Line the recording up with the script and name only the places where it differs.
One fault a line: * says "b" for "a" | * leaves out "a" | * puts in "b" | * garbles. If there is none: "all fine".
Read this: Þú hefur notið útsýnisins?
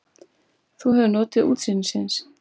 all fine